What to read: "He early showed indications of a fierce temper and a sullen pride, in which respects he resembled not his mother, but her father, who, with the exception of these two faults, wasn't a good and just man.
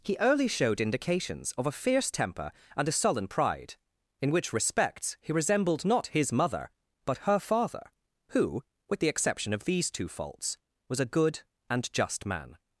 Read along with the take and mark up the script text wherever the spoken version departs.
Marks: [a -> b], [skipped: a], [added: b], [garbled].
"He early showed indications of a fierce temper and a sullen pride, in which respects he resembled not his mother, but her father, who, with the exception of these two faults, [wasn't -> was] a good and just man.